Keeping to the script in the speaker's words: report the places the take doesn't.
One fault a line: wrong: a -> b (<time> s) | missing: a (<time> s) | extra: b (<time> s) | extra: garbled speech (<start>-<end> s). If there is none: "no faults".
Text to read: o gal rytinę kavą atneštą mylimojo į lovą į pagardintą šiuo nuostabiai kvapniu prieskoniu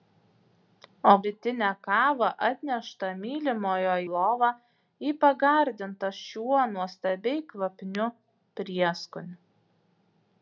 missing: gal (1.1 s)
missing: į (3.9 s)